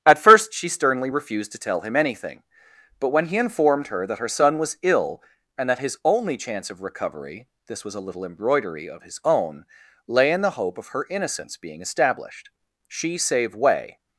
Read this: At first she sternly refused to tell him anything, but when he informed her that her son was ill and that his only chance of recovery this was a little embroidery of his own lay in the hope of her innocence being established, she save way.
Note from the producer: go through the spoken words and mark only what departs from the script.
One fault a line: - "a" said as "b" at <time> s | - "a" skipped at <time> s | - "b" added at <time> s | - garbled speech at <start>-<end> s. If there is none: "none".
none